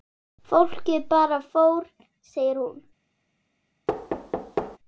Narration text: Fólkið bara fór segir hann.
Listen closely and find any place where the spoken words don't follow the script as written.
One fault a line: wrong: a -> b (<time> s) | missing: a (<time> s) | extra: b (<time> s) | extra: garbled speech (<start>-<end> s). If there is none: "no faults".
wrong: hann -> hún (2.6 s)